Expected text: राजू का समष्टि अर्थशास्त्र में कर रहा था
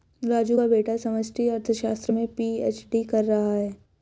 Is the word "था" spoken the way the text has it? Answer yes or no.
no